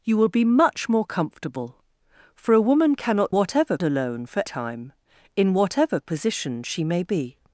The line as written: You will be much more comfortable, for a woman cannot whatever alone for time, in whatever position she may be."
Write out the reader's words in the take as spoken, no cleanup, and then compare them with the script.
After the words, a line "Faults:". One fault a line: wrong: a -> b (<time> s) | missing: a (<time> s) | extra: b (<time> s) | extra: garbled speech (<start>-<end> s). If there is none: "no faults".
You will be much more comfortable, for a woman cannot whatever alone for time, in whatever position she may be."
Faults:
no faults